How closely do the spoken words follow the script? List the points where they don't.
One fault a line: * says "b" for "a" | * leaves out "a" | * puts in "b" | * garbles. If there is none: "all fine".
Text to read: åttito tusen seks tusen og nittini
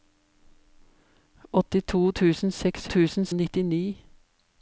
all fine